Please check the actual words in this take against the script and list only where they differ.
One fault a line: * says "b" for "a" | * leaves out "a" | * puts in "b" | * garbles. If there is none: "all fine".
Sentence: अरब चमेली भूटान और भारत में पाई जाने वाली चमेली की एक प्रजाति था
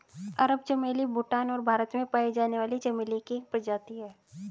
* says "है" for "था"